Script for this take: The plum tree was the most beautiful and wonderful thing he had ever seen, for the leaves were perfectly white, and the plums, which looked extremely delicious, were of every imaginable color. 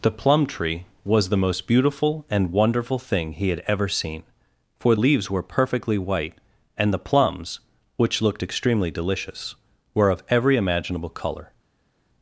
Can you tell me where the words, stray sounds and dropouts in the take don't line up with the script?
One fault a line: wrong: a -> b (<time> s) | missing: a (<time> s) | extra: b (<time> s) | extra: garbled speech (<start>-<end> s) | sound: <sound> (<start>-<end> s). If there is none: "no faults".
missing: the (5.0 s)